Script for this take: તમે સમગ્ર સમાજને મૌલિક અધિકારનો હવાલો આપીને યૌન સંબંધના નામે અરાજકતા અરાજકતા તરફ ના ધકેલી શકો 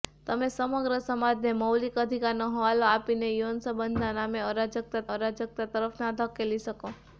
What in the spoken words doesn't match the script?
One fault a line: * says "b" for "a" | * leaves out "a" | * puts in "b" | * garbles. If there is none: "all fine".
all fine